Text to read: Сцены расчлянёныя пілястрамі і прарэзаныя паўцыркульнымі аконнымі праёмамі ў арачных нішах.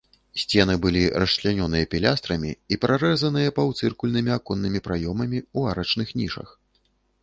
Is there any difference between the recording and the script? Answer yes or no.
yes